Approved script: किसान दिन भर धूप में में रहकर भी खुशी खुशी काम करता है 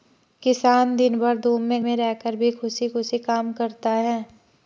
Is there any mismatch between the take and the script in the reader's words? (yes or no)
no